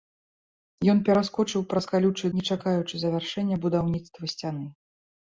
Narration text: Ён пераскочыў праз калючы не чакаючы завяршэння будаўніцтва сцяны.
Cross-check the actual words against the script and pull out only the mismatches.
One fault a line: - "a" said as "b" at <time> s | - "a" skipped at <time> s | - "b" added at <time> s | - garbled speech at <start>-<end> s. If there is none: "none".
none